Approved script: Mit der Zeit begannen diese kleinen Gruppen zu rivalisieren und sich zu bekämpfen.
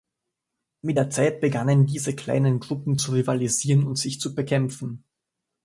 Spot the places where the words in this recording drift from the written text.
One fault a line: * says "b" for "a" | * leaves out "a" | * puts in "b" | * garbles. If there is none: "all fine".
all fine